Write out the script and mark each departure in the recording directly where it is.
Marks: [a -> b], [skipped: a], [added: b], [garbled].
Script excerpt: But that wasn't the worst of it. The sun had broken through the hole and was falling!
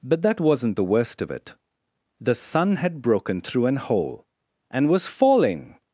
But that wasn't the worst of it. The sun had broken through [the -> an] hole and was falling!